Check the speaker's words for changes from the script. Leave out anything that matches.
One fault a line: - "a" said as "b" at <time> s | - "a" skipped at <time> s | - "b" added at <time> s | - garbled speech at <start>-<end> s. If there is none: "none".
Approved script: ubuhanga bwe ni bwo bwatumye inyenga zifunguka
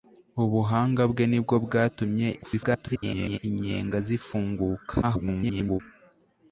- garbled speech at 2.4-3.4 s
- garbled speech at 5.0-5.8 s